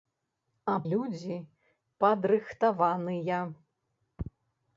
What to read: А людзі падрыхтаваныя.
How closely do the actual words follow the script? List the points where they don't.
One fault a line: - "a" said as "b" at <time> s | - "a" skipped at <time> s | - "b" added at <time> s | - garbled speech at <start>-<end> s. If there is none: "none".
none